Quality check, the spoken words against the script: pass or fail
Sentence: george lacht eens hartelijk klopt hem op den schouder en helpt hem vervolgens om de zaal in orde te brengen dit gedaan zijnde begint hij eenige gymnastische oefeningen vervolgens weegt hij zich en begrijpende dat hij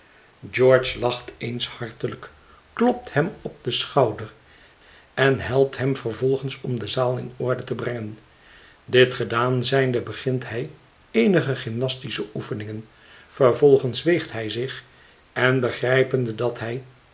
pass